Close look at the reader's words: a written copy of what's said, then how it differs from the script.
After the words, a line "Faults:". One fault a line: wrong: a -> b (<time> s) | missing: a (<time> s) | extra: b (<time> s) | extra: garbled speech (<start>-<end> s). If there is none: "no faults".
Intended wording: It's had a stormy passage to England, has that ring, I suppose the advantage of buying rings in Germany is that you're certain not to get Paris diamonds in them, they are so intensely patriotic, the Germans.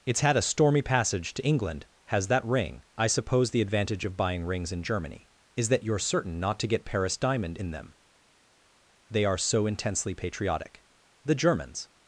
It's had a stormy passage to England, has that ring, I suppose the advantage of buying rings in Germany is that you're certain not to get Paris diamond in them, they are so intensely patriotic, the Germans.
Faults:
wrong: diamonds -> diamond (7.2 s)